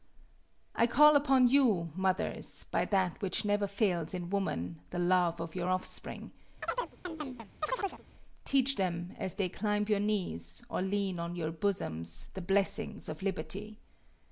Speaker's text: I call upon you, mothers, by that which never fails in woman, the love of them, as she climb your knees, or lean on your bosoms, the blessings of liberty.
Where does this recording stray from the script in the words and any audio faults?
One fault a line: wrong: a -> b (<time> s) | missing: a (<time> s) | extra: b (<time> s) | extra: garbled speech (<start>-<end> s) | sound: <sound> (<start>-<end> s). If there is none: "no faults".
extra: your offspring teach (5.5 s)
sound: chirp (6.6-8.0 s)
wrong: she -> they (9.3 s)